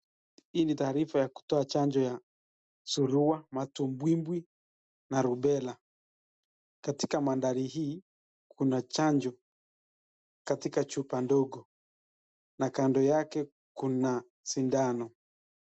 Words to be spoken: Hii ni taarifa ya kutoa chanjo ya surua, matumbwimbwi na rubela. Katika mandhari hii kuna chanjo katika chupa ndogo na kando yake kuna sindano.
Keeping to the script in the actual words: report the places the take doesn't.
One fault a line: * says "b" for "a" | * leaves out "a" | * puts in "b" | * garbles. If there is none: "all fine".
all fine